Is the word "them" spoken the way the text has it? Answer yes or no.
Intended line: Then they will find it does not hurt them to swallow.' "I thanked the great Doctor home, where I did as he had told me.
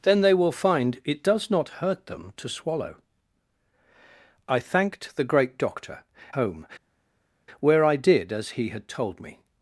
yes